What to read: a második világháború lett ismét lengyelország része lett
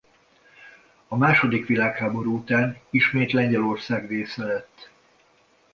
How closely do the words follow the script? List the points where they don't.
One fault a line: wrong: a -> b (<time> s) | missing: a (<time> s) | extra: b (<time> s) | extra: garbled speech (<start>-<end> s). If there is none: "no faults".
wrong: lett -> után (2.4 s)